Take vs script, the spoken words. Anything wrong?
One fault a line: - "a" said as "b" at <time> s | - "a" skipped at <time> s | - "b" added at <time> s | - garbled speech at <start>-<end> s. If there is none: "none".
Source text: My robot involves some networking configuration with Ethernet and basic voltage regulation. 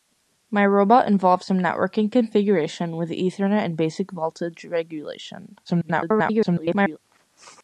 - garbled speech at 5.6-7.0 s